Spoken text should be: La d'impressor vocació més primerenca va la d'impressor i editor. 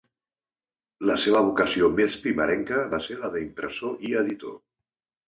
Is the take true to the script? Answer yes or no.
no